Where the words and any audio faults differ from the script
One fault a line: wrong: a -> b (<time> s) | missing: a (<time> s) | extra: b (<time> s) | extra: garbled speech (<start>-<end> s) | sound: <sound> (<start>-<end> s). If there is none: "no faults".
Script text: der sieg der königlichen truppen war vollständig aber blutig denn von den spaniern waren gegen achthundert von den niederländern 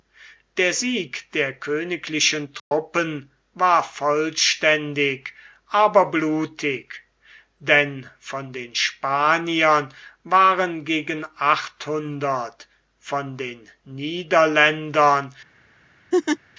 sound: dropout (2.6-2.7 s)
sound: laugh (16.1-16.4 s)